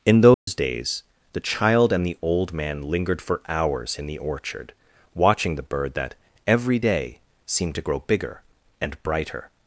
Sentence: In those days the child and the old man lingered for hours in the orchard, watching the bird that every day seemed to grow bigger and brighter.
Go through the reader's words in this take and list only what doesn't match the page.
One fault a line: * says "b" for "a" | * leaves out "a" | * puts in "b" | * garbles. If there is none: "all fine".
all fine